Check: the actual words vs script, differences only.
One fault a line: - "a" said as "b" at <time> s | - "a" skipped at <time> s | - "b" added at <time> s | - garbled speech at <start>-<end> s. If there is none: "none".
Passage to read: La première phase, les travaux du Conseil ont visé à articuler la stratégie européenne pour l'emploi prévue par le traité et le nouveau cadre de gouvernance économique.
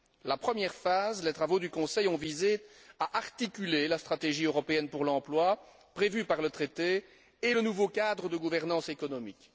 none